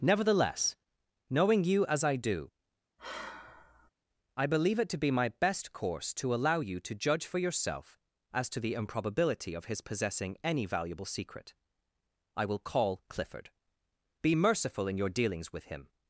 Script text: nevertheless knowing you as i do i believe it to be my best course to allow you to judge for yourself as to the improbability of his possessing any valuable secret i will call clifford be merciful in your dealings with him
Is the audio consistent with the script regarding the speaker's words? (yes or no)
yes